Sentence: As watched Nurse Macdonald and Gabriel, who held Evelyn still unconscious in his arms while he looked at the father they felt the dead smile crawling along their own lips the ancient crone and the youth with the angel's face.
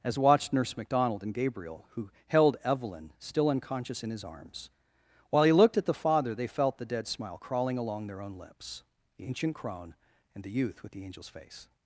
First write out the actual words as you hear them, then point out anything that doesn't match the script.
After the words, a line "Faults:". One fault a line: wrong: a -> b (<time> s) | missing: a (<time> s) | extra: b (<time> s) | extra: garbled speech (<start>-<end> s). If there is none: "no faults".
As watched Nurse Macdonald and Gabriel, who held Evelyn still unconscious in his arms while he looked at the father they felt the dead smile crawling along their own lips the ancient crone and the youth with the angel's face.
Faults:
no faults